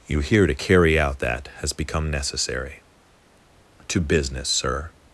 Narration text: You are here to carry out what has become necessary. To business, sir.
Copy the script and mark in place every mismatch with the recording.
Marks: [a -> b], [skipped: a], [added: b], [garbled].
You [skipped: are] here to carry out [what -> that] has become necessary. To business, sir.